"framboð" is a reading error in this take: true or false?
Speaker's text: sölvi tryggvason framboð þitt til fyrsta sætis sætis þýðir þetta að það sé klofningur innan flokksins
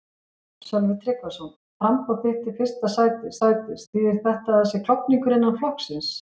false